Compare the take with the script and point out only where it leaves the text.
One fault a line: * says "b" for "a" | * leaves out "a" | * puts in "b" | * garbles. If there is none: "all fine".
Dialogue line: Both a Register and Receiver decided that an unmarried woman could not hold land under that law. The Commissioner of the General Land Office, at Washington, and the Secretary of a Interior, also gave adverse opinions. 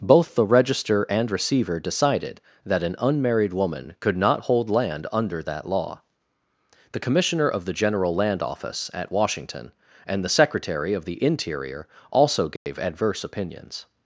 * says "the" for "a"
* says "the" for "a"